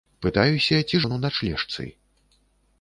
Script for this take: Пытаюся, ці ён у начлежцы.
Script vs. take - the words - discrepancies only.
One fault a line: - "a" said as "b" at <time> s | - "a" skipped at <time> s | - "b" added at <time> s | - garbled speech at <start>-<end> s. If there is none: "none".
none